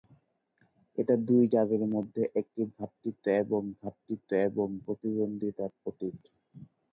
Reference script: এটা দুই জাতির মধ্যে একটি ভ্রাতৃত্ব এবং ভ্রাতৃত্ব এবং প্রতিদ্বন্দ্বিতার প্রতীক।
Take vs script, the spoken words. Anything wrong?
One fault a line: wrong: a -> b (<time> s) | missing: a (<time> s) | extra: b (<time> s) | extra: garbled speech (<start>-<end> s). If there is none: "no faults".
no faults